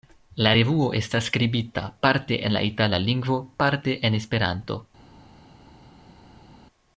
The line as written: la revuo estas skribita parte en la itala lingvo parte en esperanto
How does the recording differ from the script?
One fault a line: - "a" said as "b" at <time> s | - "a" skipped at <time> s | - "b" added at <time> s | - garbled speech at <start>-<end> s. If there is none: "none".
none